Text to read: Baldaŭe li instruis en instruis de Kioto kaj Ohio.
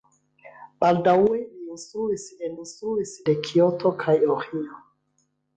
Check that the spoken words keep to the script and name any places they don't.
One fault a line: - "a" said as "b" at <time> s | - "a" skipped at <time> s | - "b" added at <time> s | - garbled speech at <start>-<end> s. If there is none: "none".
none